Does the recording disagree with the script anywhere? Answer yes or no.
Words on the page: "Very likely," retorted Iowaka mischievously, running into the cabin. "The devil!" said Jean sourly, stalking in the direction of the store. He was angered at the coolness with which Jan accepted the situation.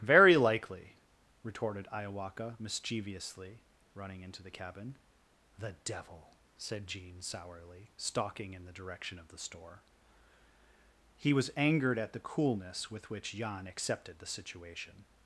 no